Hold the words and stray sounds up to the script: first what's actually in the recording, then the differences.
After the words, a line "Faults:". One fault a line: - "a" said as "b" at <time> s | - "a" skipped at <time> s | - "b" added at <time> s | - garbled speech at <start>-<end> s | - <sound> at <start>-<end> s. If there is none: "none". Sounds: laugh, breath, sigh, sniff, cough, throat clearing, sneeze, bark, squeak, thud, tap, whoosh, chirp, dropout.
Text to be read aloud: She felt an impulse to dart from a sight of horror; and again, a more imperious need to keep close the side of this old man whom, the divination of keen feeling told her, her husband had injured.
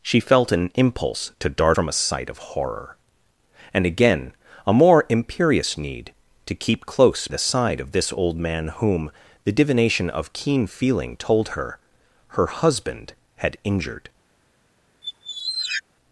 She felt an impulse to dart from a sight of horror; and again, a more imperious need to keep close the side of this old man whom, the divination of keen feeling told her, her husband had injured.
Faults:
- squeak at 15.0-15.8 s